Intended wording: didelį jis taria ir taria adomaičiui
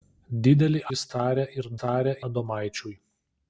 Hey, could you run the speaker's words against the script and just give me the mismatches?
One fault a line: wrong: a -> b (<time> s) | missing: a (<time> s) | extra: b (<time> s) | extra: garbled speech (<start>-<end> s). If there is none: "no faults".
no faults